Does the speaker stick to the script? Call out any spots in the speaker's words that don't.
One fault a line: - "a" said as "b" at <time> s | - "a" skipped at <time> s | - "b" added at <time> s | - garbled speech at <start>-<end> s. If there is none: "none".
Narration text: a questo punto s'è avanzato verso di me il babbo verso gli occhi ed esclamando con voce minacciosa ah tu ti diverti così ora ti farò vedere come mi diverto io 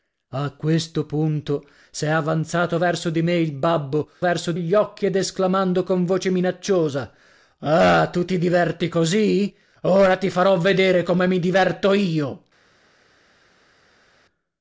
none